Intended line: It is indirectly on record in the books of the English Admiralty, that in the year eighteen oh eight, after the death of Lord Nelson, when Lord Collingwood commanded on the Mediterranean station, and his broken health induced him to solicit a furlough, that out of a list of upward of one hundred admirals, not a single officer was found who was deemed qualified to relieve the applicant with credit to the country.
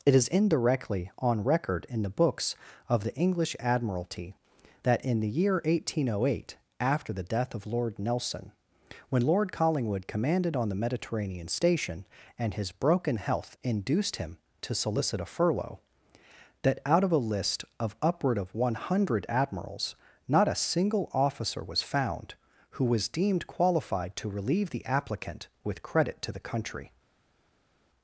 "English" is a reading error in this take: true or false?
false